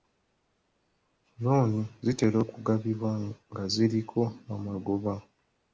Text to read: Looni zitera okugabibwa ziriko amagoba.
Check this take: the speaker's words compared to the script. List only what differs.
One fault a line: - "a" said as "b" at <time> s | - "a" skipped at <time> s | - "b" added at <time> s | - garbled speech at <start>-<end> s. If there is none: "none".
- "nga" added at 3.5 s